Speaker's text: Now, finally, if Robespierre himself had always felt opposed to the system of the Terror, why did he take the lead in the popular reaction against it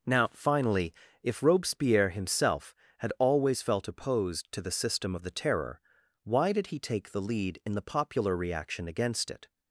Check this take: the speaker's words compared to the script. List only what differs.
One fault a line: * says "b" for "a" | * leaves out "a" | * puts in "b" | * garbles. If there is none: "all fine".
all fine